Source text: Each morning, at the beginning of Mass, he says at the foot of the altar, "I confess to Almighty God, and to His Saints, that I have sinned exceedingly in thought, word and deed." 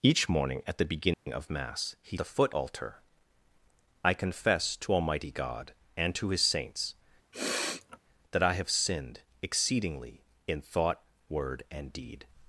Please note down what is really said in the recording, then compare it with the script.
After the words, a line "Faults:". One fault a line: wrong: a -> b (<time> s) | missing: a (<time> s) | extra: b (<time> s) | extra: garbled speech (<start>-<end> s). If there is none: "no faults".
Each morning, at the beginning of Mass, he the foot altar, "I confess to Almighty God, and to His Saints, that I have sinned exceedingly in thought, word and deed."
Faults:
missing: says at (2.2 s)
missing: of the (2.5 s)